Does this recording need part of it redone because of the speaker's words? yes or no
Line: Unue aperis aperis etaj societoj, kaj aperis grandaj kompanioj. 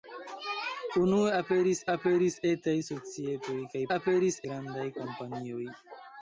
no